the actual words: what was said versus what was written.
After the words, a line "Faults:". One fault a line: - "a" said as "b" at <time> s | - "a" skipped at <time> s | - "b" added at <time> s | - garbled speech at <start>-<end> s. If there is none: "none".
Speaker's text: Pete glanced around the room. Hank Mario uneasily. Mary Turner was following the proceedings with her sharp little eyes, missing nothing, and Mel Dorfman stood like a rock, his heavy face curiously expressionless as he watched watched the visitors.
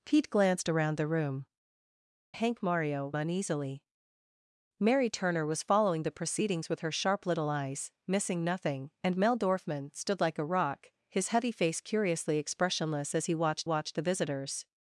Pete glanced around the room. Hank Mario uneasily. Mary Turner was following the proceedings with her sharp little eyes, missing nothing, and Mel Dorfman stood like a rock, his heavy face curiously expressionless as he watched watched the visitors.
Faults:
none